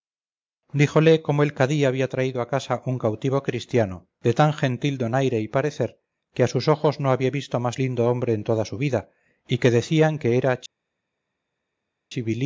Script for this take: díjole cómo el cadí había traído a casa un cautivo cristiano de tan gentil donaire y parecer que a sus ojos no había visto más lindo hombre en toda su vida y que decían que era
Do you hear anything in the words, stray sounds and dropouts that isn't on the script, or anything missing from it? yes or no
no